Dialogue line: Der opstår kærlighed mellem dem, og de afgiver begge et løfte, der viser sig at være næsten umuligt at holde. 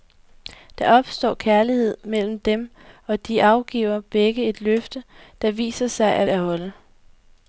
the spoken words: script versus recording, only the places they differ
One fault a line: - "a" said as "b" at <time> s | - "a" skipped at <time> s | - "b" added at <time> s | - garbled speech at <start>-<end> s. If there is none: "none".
- "være næsten umuligt" skipped at 6.3 s